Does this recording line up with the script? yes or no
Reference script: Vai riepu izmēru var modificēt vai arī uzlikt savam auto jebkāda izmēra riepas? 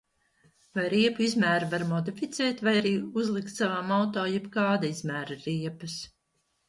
yes